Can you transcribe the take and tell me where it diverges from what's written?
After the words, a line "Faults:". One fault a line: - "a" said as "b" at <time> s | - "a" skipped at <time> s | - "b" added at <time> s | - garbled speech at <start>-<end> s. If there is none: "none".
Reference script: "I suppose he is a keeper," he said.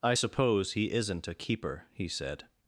"I suppose he isn't a keeper," he said.
Faults:
- "is" said as "isn't" at 0.9 s